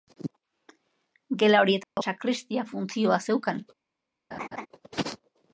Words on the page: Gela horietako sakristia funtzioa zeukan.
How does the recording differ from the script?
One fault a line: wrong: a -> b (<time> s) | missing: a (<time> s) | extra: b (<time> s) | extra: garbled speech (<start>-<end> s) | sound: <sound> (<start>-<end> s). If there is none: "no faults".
sound: dropout (1.8-2.0 s)
sound: laugh (4.3-4.7 s)